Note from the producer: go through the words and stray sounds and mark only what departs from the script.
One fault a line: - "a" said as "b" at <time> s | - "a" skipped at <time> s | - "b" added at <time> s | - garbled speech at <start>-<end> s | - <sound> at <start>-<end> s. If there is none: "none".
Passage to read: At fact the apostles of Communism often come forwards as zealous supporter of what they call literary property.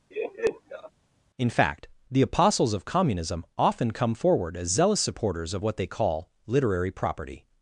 - laugh at 0.1-0.9 s
- "At" said as "In" at 1.4 s
- "forwards" said as "forward" at 4.1 s
- "supporter" said as "supporters" at 5.0 s